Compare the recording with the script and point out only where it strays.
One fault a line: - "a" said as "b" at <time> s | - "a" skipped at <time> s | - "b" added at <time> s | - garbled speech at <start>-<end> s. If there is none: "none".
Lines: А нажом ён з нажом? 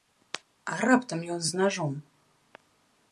- "нажом" said as "раптам" at 0.9 s